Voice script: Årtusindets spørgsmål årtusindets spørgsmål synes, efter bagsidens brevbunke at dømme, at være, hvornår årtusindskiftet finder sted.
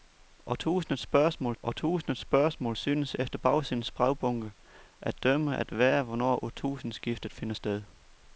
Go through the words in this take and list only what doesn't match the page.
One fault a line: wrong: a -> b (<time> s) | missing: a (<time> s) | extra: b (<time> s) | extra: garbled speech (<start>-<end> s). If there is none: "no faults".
no faults